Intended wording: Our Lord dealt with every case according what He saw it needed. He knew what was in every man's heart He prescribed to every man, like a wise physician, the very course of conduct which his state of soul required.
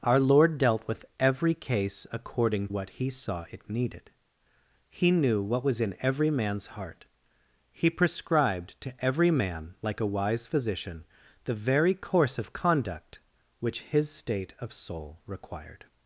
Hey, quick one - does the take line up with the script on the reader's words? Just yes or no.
yes